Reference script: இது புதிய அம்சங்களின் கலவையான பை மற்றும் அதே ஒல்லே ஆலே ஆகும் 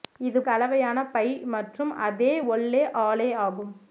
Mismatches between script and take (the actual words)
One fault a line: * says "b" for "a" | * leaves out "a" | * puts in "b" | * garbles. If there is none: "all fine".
* leaves out "புதிய அம்சங்களின்"